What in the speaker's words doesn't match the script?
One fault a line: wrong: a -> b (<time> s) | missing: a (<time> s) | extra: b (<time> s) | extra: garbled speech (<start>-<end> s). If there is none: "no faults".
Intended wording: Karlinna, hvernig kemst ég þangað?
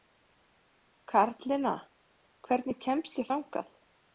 no faults